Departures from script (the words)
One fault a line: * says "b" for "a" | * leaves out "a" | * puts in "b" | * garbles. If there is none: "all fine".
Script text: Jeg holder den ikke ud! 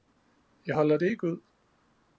* says "det" for "den"